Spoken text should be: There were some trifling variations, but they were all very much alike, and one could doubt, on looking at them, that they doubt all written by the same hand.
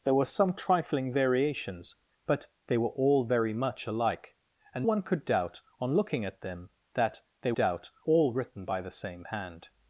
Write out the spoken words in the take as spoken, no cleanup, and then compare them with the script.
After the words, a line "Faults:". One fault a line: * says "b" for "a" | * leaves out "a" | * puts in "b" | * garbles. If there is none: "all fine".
There were some trifling variations, but they were all very much alike, and one could doubt, on looking at them, that they doubt all written by the same hand.
Faults:
all fine